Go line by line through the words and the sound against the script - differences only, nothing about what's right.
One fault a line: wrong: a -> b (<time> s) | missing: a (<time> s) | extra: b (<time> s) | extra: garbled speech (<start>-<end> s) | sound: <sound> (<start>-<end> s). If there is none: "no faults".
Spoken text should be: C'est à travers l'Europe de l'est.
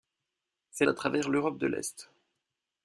no faults